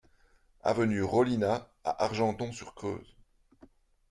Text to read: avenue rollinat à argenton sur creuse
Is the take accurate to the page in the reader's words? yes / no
yes